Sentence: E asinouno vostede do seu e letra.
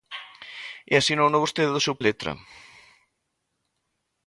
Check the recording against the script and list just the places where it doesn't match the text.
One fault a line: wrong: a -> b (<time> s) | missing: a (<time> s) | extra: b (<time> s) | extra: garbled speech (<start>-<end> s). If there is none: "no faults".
no faults